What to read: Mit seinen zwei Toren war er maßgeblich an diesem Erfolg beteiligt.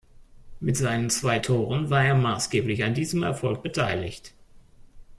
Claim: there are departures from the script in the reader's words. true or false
false